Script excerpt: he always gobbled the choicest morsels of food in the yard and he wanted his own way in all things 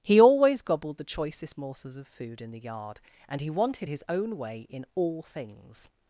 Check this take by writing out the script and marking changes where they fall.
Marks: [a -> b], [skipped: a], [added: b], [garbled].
he always gobbled the choicest morsels of food in the yard and he wanted his own way in all things